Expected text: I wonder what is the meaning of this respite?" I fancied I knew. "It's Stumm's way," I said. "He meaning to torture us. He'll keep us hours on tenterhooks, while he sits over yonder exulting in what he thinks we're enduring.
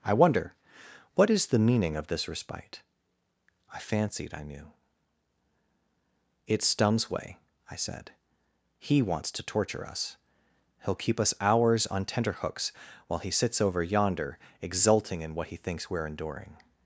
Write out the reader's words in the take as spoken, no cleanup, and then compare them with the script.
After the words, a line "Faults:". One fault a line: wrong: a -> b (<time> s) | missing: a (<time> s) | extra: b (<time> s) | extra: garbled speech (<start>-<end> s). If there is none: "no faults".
I wonder what is the meaning of this respite?" I fancied I knew. "It's Stumm's way," I said. "He wants to torture us. He'll keep us hours on tenterhooks, while he sits over yonder exulting in what he thinks we're enduring.
Faults:
wrong: meaning -> wants (9.0 s)